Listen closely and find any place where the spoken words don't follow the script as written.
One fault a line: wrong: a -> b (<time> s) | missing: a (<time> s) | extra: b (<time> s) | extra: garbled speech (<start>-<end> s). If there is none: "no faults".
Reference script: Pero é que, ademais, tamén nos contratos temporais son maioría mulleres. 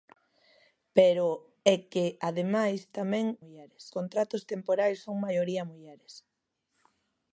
wrong: nos -> mulleres (3.4 s)